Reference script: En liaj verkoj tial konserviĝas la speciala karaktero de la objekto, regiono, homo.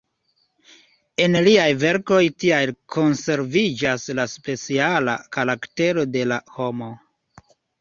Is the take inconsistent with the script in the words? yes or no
yes